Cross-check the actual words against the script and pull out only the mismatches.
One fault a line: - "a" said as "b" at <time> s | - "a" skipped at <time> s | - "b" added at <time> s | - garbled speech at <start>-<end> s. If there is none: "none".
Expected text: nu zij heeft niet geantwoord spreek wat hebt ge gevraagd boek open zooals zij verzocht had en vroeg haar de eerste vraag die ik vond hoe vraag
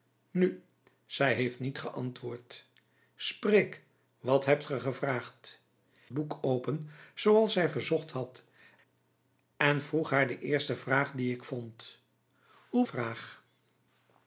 none